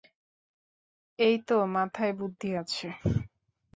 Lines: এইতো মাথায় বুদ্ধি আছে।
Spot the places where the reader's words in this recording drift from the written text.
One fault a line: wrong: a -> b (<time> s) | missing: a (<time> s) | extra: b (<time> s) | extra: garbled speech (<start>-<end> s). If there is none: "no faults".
no faults